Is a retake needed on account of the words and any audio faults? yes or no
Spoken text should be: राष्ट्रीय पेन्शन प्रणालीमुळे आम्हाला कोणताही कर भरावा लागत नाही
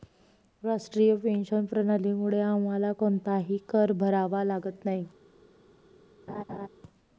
yes